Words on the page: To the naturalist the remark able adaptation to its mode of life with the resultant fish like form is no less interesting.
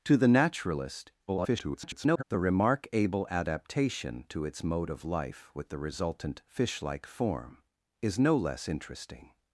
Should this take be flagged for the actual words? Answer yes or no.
yes